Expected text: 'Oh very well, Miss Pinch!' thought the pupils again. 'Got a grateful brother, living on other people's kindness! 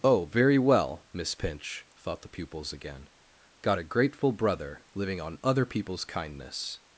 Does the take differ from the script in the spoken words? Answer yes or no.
no